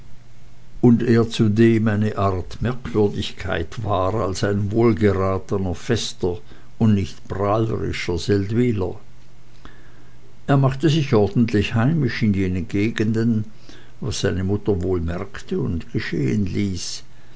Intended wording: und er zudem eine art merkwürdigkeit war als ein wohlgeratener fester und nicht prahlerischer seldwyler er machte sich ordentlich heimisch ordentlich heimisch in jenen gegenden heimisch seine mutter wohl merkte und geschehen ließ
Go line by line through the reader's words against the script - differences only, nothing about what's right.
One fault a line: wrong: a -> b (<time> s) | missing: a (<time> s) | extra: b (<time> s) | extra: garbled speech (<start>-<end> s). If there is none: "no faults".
missing: ordentlich heimisch (12.2 s)
wrong: heimisch -> was (14.0 s)